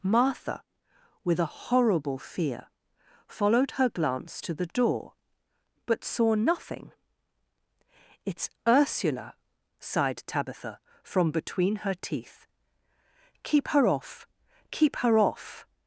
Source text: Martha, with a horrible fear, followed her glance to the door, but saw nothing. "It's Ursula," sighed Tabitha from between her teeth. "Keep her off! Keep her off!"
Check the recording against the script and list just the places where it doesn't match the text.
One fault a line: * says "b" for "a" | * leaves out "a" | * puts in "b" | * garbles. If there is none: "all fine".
all fine